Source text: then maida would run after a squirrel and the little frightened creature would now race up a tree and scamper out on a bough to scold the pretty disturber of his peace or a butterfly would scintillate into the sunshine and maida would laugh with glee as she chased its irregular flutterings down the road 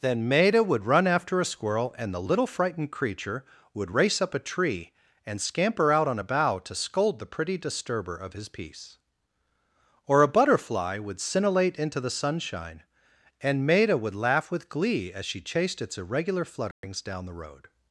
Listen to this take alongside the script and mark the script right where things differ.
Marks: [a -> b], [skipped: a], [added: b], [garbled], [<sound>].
then maida would run after a squirrel and the little frightened creature would [skipped: now] race up a tree and scamper out on a bough to scold the pretty disturber of his peace or a butterfly would scintillate into the sunshine and maida would laugh with glee as she chased its irregular flutterings [dropout] down the road